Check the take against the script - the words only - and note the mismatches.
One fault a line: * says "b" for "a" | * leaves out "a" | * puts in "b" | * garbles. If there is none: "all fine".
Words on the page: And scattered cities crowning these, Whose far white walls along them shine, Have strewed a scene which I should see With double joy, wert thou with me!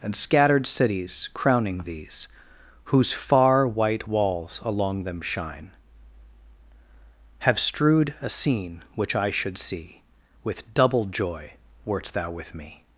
all fine